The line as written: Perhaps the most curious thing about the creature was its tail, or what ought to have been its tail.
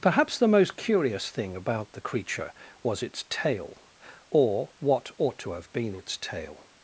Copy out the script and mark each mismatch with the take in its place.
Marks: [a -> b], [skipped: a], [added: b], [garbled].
Perhaps the most curious thing about the creature was its tail, or what ought to have been its tail.